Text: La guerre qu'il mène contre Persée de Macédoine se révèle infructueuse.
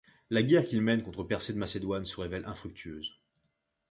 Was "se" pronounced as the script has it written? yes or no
yes